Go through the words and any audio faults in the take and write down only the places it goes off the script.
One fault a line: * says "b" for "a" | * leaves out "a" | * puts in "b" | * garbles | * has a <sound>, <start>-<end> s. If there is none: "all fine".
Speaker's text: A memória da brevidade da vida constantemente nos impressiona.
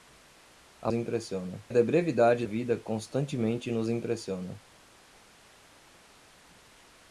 * says "impressiona" for "memória"
* leaves out "da"